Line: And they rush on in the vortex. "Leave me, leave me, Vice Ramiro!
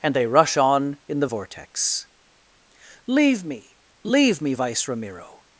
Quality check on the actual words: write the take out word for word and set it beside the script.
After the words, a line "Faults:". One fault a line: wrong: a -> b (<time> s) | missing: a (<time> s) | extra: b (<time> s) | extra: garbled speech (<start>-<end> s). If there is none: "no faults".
And they rush on in the vortex. "Leave me, leave me, Vice Ramiro!
Faults:
no faults